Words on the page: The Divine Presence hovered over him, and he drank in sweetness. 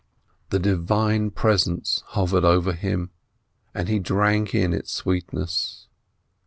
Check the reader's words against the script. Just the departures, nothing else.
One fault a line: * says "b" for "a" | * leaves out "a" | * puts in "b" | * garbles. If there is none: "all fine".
* puts in "its"